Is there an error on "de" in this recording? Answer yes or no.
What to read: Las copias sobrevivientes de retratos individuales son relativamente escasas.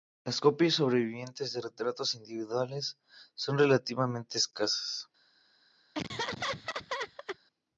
no